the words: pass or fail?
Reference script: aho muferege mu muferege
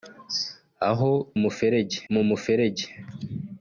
pass